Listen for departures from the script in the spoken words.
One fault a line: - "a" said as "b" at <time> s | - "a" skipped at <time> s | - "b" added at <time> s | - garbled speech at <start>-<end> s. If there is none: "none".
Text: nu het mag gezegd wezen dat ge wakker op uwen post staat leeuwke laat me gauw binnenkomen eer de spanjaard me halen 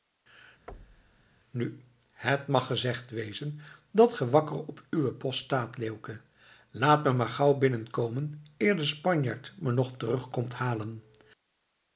- "maar" added at 7.1 s
- "nog terug komt" added at 9.7 s